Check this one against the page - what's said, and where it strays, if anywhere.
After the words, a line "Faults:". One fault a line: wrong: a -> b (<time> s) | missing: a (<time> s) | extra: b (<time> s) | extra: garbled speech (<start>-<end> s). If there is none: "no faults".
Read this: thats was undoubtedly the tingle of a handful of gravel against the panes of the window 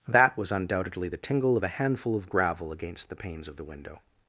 that was undoubtedly the tingle of a handful of gravel against the panes of the window
Faults:
wrong: thats -> that (0.1 s)